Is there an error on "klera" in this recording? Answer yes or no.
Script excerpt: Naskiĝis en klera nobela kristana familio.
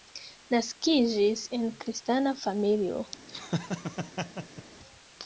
yes